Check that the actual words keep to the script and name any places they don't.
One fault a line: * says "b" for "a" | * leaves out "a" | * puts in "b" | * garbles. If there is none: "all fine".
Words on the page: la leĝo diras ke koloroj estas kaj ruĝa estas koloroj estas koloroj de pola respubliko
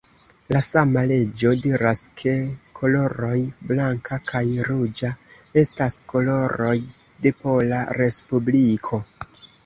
* puts in "sama"
* says "blanka" for "estas"
* leaves out "estas koloroj"